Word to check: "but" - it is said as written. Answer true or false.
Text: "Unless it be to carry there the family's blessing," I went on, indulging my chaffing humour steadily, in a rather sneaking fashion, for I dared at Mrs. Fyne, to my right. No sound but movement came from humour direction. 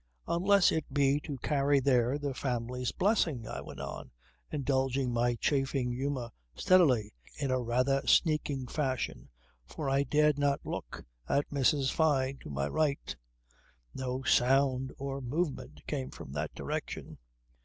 false